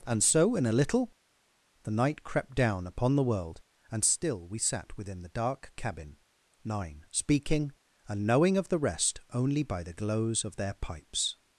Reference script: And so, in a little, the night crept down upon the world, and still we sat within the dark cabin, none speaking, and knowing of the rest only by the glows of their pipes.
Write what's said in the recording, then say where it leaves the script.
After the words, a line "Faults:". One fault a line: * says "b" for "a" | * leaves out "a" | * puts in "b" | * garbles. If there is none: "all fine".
And so, in a little, the night crept down upon the world, and still we sat within the dark cabin, nine speaking, and knowing of the rest only by the glows of their pipes.
Faults:
* says "nine" for "none"